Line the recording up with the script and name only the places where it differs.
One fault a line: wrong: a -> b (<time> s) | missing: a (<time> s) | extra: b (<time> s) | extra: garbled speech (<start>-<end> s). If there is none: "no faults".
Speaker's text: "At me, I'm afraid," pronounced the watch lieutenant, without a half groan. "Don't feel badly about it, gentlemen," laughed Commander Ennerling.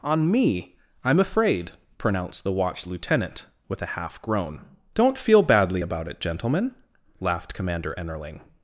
wrong: At -> On (0.0 s)
wrong: without -> with (3.7 s)